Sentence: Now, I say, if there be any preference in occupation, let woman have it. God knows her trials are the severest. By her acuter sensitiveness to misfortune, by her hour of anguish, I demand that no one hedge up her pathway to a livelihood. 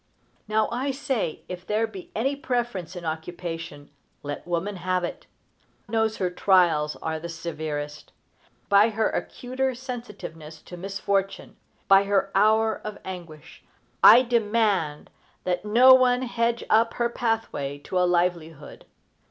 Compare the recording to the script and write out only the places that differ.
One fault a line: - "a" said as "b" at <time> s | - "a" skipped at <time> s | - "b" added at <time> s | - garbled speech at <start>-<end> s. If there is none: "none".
- "God" skipped at 5.3 s